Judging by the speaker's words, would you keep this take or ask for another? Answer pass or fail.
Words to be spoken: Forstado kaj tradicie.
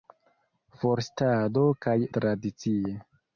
pass